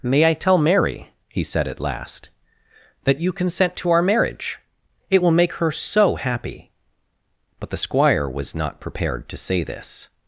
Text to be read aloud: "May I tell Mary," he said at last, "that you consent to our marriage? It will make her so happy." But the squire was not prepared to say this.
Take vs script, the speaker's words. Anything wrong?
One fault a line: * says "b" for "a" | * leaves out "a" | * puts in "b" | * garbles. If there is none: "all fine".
all fine